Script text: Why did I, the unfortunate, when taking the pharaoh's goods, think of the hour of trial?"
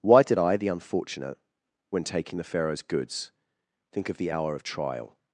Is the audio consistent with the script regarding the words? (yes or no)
yes